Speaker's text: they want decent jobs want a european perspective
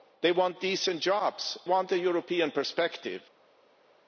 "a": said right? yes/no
yes